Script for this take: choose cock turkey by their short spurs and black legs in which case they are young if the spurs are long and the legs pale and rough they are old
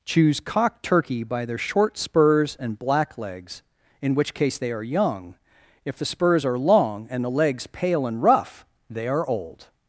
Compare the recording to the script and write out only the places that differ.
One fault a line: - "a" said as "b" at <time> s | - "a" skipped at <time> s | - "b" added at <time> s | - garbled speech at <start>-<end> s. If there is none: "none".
none